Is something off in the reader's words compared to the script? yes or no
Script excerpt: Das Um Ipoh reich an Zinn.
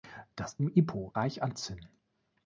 no